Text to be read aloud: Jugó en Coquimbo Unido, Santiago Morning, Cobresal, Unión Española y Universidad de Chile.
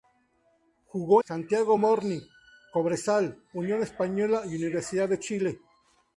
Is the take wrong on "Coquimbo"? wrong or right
wrong